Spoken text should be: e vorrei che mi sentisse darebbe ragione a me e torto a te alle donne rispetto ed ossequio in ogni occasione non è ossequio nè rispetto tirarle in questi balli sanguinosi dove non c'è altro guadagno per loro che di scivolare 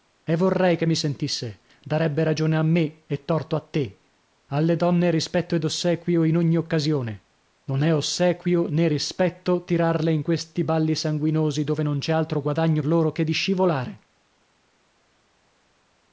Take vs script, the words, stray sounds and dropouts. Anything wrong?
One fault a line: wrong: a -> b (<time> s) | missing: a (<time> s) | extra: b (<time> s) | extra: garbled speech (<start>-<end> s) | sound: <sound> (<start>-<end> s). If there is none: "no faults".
missing: per (12.8 s)